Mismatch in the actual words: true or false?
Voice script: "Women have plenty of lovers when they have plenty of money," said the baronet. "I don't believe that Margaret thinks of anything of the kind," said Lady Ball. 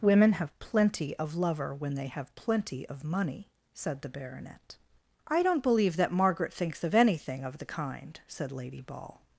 true